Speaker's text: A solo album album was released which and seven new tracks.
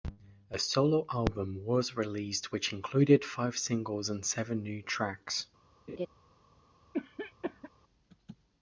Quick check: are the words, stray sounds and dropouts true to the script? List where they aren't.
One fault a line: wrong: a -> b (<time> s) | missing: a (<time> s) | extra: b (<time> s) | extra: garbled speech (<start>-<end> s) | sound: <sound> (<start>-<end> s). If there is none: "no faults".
missing: album (1.6 s)
extra: included five singles (2.7 s)
sound: laugh (5.9-6.1 s)
sound: cough (6.9-7.7 s)